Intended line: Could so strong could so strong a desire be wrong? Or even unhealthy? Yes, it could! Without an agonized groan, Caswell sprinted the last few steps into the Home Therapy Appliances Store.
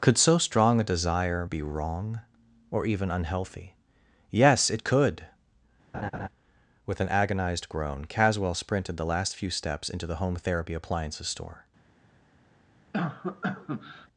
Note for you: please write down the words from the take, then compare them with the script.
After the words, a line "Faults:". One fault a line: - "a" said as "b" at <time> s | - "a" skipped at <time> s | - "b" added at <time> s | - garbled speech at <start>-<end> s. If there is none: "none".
Could so strong a desire be wrong? Or even unhealthy? Yes, it could! With an agonized groan, Caswell sprinted the last few steps into the Home Therapy Appliances Store.
Faults:
- "could so strong" skipped at 0.8 s
- "Without" said as "With" at 6.9 s